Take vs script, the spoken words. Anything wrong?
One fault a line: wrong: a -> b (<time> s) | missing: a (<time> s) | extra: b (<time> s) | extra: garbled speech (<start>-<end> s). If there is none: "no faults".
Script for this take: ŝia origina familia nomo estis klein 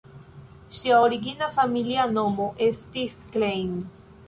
no faults